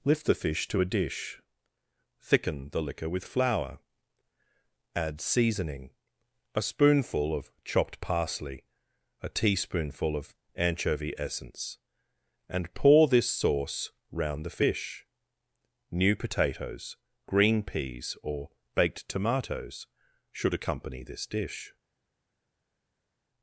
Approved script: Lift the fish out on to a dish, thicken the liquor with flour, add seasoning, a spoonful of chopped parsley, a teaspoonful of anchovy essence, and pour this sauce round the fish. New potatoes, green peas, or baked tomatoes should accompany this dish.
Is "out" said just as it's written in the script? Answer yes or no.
no